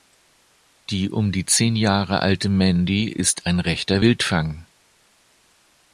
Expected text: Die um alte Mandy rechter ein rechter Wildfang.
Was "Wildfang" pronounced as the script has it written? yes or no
yes